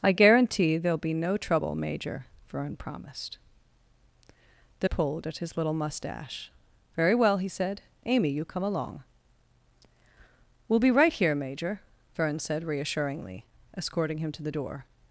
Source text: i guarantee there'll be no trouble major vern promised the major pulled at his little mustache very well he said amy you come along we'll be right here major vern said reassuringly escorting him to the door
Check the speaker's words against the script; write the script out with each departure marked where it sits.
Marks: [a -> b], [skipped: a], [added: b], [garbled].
i guarantee there'll be no trouble major vern promised the [skipped: major] pulled at his little mustache very well he said amy you come along we'll be right here major vern said reassuringly escorting him to the door